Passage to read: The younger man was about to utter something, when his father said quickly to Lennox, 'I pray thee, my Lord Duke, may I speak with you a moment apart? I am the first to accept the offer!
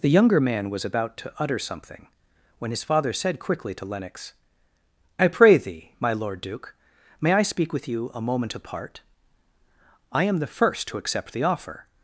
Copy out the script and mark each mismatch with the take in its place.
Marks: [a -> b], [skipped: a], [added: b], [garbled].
The younger man was about to utter something, when his father said quickly to Lennox, 'I pray thee, my Lord Duke, may I speak with you a moment apart? I am the first to accept the offer!